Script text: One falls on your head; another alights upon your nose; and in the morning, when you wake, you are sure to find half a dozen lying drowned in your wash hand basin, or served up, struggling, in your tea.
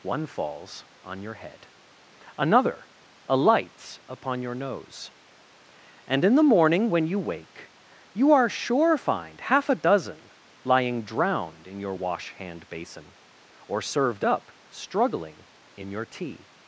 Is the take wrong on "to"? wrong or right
wrong